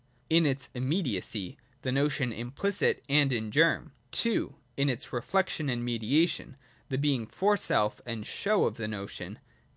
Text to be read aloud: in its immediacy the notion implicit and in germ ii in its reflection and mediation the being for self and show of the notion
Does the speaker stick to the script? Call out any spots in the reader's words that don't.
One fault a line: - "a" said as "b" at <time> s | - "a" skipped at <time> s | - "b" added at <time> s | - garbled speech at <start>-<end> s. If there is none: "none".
none